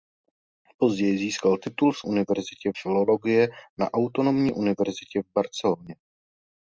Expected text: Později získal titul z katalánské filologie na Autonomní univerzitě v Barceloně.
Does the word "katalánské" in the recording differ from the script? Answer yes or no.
yes